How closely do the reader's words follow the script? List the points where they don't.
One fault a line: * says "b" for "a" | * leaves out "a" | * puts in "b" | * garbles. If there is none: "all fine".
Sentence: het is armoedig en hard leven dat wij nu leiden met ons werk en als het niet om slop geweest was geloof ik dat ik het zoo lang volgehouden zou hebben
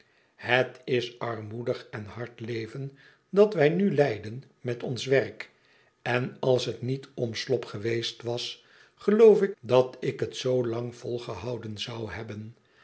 all fine